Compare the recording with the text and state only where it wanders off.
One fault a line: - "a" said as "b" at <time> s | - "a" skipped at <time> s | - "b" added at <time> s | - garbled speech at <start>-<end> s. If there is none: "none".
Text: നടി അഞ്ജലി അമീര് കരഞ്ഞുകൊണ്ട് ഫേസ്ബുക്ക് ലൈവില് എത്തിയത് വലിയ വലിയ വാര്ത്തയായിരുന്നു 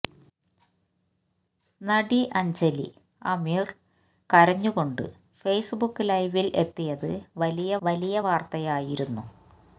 none